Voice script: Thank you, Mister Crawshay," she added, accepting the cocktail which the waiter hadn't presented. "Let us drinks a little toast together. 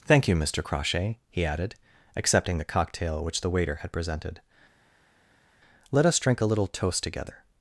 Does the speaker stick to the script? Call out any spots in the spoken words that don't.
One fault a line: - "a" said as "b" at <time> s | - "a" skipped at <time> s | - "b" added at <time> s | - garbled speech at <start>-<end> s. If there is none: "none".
- "she" said as "he" at 1.3 s
- "hadn't" said as "had" at 3.8 s
- "drinks" said as "drink" at 6.2 s